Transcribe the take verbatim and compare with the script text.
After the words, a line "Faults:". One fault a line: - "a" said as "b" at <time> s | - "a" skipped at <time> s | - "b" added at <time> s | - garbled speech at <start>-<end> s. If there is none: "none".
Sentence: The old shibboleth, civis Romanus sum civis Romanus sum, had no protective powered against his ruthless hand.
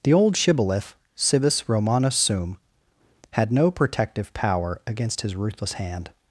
The old shibboleth, civis Romanus sum, had no protective power against his ruthless hand.
Faults:
- "civis Romanus sum" skipped at 2.6 s
- "powered" said as "power" at 4.3 s